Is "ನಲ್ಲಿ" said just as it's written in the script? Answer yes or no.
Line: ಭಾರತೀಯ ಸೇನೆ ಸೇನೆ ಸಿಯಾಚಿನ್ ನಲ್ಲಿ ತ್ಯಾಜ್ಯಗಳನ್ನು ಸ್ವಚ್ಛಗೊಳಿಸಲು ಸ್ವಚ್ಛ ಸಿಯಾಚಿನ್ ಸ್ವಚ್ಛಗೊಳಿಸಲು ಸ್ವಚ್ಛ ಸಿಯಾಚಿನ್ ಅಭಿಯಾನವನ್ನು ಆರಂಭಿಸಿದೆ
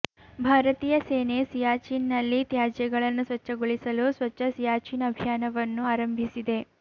yes